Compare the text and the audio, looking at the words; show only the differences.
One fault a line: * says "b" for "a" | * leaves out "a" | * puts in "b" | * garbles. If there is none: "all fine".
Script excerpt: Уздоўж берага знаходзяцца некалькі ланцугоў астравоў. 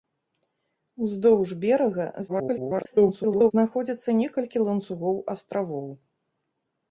* garbles